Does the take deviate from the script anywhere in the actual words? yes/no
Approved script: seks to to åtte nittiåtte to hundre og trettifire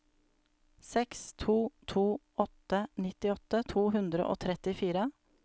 no